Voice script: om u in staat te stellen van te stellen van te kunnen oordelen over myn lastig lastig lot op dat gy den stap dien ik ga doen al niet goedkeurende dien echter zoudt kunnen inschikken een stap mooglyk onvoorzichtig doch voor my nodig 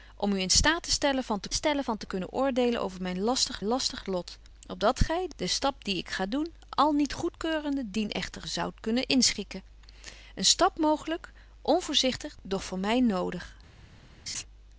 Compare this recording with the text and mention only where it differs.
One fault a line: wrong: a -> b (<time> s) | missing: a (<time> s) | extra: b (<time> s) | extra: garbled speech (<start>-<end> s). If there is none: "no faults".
no faults